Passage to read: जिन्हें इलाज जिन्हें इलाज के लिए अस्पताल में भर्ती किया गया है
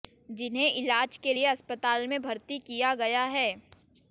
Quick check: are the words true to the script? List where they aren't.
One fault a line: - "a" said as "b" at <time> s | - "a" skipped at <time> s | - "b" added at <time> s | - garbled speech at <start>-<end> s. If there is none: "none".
- "जिन्हें इलाज" skipped at 1.2 s